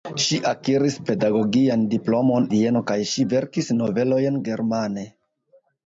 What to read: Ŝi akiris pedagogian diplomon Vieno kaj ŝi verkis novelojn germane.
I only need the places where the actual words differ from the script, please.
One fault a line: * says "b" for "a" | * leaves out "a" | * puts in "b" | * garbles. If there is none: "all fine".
all fine